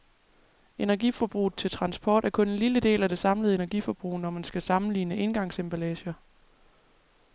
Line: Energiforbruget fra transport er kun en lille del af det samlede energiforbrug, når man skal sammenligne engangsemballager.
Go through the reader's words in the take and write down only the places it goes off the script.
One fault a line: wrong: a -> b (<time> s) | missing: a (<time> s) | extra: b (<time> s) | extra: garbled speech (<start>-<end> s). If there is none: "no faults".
wrong: fra -> til (1.6 s)